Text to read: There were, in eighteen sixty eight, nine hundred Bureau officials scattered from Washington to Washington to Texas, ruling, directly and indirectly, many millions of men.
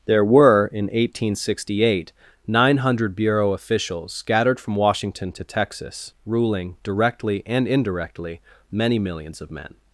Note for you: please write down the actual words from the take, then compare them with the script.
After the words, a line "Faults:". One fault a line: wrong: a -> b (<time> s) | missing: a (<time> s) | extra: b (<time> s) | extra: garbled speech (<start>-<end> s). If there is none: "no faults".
There were, in eighteen sixty eight, nine hundred Bureau officials scattered from Washington to Texas, ruling, directly and indirectly, many millions of men.
Faults:
missing: Washington to (5.4 s)